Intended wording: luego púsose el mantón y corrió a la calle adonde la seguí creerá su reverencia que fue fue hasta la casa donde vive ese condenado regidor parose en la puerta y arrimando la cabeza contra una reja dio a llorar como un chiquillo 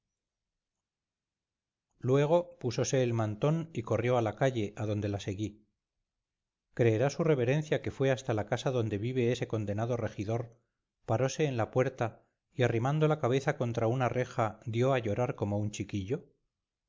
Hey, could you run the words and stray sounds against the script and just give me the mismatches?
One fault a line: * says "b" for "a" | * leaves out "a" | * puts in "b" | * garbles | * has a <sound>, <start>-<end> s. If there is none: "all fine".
* leaves out "fue"